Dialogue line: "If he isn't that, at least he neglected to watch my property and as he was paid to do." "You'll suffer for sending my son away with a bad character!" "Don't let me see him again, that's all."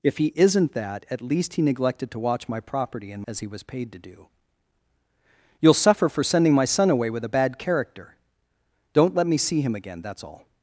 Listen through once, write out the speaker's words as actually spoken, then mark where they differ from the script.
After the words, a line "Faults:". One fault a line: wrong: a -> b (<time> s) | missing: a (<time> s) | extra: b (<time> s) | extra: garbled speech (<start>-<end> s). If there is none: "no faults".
"If he isn't that, at least he neglected to watch my property and as he was paid to do." "You'll suffer for sending my son away with a bad character!" "Don't let me see him again, that's all."
Faults:
no faults